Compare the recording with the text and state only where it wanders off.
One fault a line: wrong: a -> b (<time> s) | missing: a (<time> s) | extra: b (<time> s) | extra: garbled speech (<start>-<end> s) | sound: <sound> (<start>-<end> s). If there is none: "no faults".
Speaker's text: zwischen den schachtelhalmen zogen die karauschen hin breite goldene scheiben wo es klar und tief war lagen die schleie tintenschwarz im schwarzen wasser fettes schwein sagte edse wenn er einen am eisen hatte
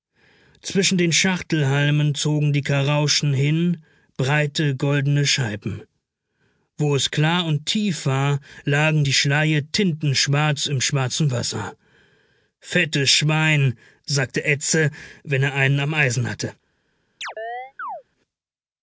sound: chirp (17.2-18.0 s)